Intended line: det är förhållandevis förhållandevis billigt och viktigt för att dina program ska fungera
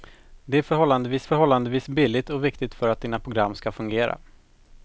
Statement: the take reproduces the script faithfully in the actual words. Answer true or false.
true